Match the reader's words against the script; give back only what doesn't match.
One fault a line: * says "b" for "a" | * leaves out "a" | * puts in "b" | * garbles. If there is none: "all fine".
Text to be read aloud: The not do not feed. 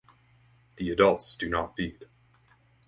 * says "adults" for "not"